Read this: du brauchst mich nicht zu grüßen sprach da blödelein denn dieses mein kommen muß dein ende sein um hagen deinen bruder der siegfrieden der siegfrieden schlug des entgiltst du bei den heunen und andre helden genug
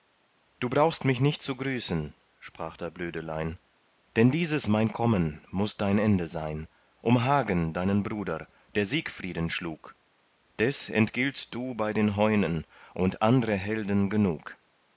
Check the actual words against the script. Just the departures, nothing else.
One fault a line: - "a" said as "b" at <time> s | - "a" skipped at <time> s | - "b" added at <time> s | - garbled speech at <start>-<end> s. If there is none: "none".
- "der siegfrieden" skipped at 9.5 s